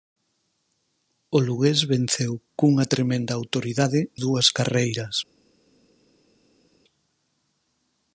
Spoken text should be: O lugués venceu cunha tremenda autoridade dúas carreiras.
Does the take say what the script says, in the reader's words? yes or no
yes